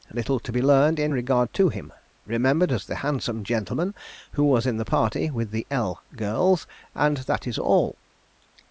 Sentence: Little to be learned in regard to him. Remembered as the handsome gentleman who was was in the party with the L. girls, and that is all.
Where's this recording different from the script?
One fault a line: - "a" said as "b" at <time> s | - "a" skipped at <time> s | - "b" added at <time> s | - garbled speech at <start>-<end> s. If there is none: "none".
- "was" skipped at 4.7 s